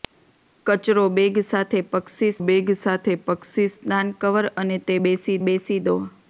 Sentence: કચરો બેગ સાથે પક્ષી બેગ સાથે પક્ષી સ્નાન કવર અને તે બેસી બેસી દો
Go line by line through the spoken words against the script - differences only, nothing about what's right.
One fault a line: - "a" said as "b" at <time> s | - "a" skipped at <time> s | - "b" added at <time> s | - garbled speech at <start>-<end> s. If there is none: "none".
none